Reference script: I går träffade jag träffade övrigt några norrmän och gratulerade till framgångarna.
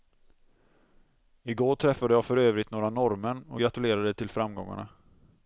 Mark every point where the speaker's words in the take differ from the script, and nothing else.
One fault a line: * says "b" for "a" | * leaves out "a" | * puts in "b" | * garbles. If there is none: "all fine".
* says "för" for "träffade"